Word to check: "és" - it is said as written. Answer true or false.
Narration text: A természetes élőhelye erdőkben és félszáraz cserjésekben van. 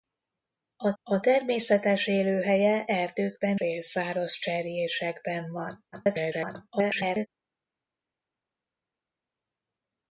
false